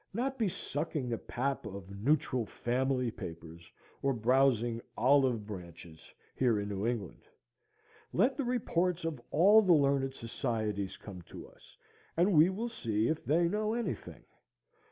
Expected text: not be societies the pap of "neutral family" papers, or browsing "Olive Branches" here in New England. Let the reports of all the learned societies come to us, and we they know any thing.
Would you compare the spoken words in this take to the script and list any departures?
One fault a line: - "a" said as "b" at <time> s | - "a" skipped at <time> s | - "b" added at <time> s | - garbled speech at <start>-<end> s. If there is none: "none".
- "societies" said as "sucking" at 0.5 s
- "will see if" added at 12.5 s